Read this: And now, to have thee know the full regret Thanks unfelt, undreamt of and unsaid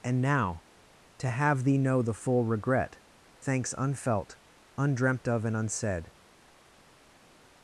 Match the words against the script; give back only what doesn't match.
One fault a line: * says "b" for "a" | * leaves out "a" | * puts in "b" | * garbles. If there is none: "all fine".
all fine